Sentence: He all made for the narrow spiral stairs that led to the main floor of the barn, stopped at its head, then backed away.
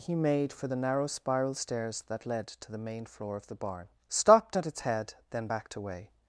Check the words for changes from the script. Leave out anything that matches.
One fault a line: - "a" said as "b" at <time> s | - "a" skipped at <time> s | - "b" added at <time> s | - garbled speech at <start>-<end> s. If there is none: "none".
- "all" skipped at 0.1 s